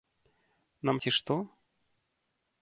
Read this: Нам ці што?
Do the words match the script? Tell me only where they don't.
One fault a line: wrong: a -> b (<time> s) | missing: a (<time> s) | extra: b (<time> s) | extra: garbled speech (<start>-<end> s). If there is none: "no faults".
no faults